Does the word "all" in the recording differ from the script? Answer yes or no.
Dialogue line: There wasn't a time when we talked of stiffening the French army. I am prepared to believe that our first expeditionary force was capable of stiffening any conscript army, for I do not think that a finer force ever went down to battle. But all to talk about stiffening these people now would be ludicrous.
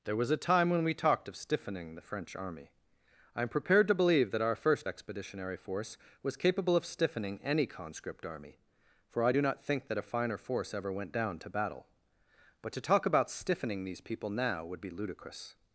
yes